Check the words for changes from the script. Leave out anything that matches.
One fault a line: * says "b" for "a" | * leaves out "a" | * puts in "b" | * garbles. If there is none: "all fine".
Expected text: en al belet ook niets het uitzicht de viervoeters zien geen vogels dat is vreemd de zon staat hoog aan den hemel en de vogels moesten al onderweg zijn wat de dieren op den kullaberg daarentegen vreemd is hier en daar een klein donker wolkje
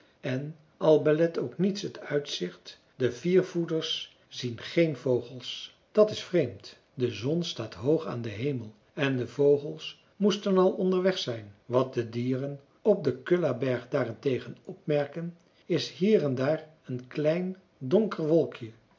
* says "opmerken" for "vreemd"